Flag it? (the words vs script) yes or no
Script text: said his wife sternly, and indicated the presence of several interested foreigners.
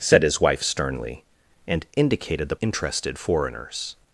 yes